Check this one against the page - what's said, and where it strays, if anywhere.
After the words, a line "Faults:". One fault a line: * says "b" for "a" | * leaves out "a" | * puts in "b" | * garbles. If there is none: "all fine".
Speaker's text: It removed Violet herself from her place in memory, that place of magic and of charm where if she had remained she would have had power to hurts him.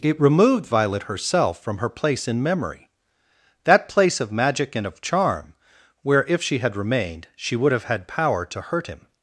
It removed Violet herself from her place in memory, that place of magic and of charm where if she had remained she would have had power to hurt him.
Faults:
* says "hurt" for "hurts"